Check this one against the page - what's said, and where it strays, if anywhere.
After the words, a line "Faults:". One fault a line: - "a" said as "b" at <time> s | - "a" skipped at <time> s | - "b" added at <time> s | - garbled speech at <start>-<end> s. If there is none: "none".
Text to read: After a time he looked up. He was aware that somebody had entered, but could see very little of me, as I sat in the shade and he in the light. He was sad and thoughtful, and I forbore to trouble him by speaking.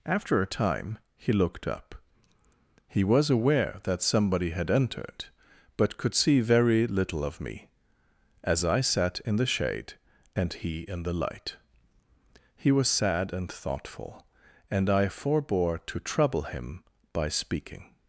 After a time he looked up. He was aware that somebody had entered, but could see very little of me, as I sat in the shade and he in the light. He was sad and thoughtful, and I forbore to trouble him by speaking.
Faults:
none